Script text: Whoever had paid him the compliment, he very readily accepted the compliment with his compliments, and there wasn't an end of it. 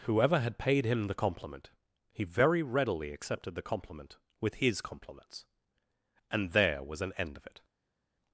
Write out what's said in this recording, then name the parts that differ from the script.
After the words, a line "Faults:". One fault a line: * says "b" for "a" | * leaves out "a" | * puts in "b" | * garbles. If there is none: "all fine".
Whoever had paid him the compliment, he very readily accepted the compliment with his compliments, and there was an end of it.
Faults:
* says "was" for "wasn't"